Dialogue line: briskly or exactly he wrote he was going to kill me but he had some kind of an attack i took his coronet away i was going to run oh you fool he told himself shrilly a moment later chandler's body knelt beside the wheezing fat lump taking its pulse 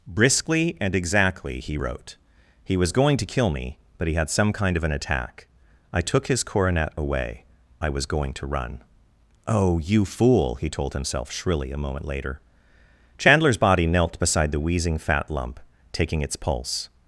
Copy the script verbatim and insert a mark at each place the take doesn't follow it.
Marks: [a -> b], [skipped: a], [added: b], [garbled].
briskly [or -> and] exactly he wrote he was going to kill me but he had some kind of an attack i took his coronet away i was going to run oh you fool he told himself shrilly a moment later chandler's body knelt beside the wheezing fat lump taking its pulse